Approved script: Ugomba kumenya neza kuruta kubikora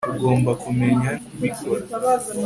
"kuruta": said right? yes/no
no